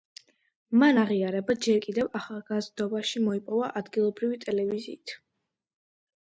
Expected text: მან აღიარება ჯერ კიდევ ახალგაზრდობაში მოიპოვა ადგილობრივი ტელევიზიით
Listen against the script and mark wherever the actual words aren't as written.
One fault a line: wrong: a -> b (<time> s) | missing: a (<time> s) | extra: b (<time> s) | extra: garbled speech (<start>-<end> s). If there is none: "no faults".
no faults